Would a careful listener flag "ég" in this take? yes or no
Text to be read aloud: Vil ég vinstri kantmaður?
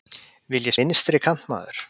no